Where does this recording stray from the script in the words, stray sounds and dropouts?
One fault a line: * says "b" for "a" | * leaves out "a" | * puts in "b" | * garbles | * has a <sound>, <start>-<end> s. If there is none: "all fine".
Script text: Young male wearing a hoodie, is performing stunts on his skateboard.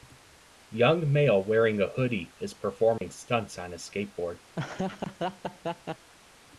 * has a dropout, 3.0-3.0 s
* has a laugh, 4.5-6.1 s